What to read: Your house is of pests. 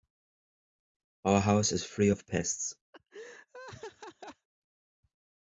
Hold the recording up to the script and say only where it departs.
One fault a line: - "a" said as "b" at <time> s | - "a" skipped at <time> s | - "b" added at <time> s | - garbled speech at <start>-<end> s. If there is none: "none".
- "Your" said as "Our" at 1.2 s
- "free" added at 1.8 s